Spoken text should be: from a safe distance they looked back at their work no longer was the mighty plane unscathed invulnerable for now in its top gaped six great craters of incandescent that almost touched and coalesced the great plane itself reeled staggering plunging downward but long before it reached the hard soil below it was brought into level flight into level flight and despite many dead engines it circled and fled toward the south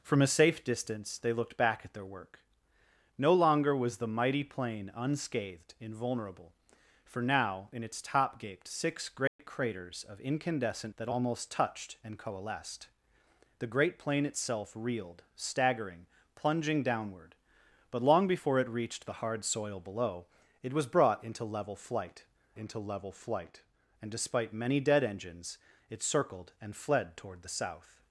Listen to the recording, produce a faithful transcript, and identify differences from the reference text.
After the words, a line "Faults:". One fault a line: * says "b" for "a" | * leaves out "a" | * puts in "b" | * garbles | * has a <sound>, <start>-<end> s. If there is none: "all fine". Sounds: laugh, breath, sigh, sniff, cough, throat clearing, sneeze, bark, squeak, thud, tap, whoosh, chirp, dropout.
from a safe distance they looked back at their work no longer was the mighty plane unscathed invulnerable for now in its top gaped six great craters of incandescent that almost touched and coalesced the great plane itself reeled staggering plunging downward but long before it reached the hard soil below it was brought into level flight into level flight and despite many dead engines it circled and fled toward the south
Faults:
* has a dropout, 9.3-9.4 s